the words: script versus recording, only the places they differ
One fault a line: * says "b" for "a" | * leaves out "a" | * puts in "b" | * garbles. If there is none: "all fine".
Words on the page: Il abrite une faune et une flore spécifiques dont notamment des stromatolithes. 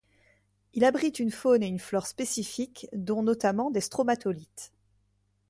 all fine